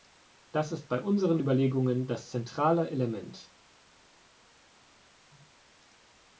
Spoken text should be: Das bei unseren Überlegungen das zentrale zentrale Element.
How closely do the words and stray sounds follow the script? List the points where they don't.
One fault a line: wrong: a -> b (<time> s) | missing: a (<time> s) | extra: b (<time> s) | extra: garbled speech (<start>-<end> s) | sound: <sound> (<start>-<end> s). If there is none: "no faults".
extra: ist (0.7 s)
missing: zentrale (2.9 s)